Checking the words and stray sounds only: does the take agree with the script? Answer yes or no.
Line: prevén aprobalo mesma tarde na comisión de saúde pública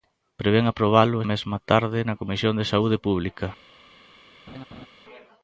no